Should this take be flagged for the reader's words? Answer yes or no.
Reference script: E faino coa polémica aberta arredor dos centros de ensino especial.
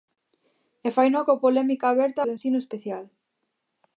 yes